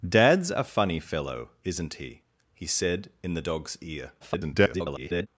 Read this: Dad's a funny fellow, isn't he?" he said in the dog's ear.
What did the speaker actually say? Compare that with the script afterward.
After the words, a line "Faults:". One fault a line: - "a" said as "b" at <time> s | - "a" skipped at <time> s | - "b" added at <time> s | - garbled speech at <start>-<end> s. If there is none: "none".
Dad's a funny fellow, isn't he?" he said in the dog's ear. [garbled]
Faults:
- garbled speech at 4.2-5.3 s